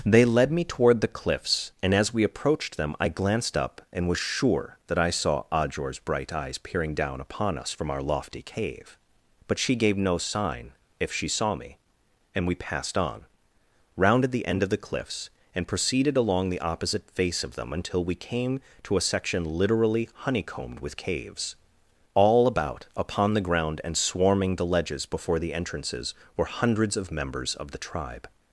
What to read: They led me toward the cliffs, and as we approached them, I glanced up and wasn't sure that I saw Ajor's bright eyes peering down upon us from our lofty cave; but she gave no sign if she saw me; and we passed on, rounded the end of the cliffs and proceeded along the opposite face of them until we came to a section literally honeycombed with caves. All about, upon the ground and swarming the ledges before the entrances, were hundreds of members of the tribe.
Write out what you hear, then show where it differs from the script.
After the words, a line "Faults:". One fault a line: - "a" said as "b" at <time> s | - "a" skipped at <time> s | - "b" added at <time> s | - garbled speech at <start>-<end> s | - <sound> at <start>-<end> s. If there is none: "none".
They led me toward the cliffs, and as we approached them, I glanced up and was sure that I saw Ajor's bright eyes peering down upon us from our lofty cave; but she gave no sign if she saw me; and we passed on, rounded the end of the cliffs and proceeded along the opposite face of them until we came to a section literally honeycombed with caves. All about, upon the ground and swarming the ledges before the entrances, were hundreds of members of the tribe.
Faults:
- "wasn't" said as "was" at 4.1 s